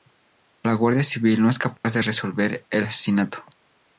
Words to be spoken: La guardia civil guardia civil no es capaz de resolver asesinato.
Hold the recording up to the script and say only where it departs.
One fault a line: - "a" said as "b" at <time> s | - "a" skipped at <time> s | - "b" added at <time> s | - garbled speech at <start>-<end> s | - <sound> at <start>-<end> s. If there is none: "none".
- "guardia civil" skipped at 1.4 s
- dropout at 1.8-1.8 s
- "el" added at 2.7 s